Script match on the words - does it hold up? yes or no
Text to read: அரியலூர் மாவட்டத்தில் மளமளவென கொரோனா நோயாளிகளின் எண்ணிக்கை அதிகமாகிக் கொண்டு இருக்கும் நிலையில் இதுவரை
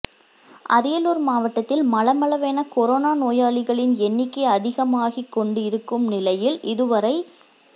yes